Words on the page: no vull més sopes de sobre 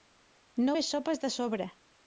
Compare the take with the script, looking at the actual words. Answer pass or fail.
fail